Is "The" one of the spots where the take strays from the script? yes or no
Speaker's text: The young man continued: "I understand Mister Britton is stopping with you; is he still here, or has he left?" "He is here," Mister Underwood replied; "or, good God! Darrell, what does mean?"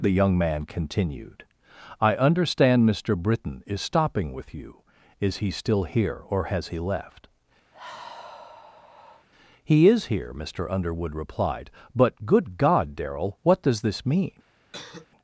no